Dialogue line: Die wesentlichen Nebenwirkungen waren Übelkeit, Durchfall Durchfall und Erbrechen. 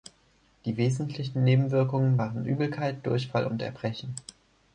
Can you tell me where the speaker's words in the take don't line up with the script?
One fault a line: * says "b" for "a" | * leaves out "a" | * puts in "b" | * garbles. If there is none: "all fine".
* leaves out "Durchfall"